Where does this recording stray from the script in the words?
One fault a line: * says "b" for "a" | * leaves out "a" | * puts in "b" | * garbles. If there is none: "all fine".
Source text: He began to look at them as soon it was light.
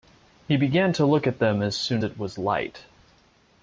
all fine